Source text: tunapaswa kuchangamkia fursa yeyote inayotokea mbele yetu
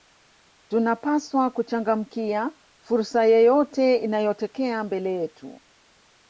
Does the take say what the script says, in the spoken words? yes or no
yes